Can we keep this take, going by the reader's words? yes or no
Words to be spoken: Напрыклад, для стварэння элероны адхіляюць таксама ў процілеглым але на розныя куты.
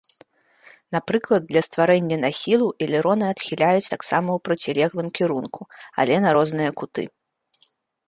no